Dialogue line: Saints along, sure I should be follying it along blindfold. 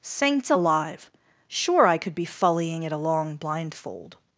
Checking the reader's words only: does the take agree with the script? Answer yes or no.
no